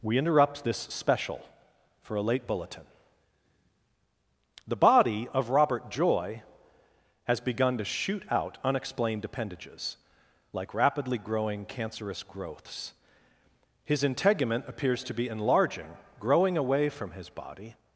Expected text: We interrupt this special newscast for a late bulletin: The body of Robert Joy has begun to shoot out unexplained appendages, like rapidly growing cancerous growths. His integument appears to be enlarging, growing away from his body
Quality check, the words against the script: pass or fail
fail